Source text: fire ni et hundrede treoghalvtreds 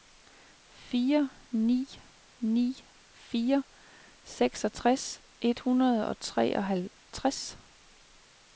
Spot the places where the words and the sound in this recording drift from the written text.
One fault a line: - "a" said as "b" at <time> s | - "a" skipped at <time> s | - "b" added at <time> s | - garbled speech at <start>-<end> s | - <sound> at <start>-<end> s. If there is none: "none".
- "ni fire seksogtres" added at 2.4 s
- "og" added at 6.1 s